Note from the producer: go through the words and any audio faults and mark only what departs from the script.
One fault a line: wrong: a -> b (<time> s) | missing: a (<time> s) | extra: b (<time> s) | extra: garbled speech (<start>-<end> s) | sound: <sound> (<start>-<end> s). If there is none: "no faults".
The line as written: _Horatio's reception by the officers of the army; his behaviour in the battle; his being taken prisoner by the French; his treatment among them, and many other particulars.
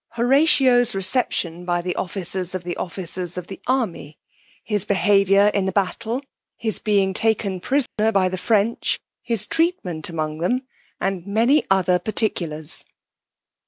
extra: officers of the (2.8 s)
sound: dropout (7.9-8.0 s)